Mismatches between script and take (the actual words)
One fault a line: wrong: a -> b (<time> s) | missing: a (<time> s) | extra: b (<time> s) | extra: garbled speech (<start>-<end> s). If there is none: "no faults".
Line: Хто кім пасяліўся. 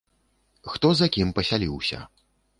extra: за (1.0 s)